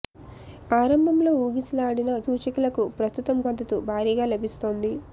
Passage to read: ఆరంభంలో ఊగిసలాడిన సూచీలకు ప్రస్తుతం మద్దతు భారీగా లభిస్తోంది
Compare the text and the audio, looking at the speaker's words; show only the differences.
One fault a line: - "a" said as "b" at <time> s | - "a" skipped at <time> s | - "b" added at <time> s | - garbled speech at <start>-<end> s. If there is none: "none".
none